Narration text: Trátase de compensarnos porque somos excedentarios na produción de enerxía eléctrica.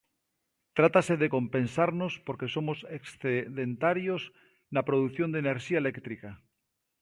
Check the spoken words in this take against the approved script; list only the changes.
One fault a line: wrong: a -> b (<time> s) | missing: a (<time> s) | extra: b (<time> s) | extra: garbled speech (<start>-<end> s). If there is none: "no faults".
no faults